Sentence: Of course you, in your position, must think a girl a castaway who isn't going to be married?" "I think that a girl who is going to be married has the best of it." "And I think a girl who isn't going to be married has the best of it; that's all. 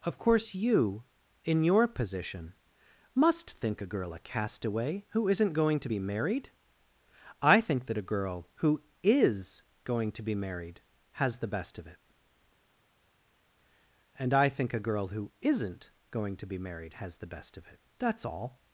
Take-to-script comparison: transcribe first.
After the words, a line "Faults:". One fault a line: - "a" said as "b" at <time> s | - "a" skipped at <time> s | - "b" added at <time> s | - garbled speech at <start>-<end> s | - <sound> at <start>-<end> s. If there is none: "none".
Of course you, in your position, must think a girl a castaway who isn't going to be married?" "I think that a girl who is going to be married has the best of it." "And I think a girl who isn't going to be married has the best of it; that's all.
Faults:
none